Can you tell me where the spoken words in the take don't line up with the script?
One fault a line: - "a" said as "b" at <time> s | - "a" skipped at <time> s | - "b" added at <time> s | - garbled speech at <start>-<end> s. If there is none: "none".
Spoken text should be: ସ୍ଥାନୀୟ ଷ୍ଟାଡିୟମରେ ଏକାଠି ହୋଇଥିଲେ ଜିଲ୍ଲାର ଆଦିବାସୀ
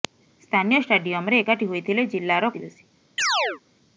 none